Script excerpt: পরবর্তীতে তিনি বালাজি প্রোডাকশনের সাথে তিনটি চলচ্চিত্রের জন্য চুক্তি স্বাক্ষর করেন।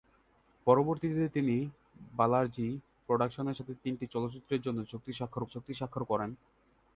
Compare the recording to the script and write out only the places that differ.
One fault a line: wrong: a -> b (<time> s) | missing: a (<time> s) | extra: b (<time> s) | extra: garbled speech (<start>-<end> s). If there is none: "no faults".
extra: চুক্তি স্বাক্ষর (5.5 s)